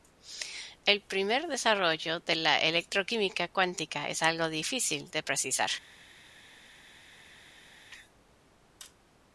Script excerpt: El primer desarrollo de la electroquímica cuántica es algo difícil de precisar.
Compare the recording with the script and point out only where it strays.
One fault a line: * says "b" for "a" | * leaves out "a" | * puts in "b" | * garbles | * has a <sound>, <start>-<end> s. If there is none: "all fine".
all fine